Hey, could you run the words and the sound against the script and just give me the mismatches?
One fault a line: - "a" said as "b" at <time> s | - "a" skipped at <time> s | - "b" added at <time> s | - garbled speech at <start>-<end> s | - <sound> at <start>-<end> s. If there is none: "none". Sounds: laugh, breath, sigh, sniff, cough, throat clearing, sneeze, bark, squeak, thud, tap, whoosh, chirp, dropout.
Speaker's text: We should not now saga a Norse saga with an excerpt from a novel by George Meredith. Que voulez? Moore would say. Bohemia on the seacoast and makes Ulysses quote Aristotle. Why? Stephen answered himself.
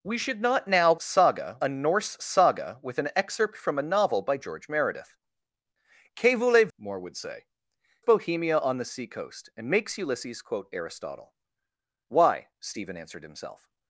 none